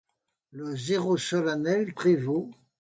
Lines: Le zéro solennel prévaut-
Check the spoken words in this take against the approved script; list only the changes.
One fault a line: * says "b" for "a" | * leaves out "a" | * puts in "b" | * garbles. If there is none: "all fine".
all fine